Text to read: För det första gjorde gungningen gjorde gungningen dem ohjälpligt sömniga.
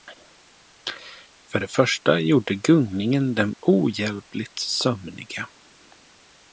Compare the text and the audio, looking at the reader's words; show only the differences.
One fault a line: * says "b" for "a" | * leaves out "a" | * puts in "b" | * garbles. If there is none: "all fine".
* leaves out "gjorde gungningen"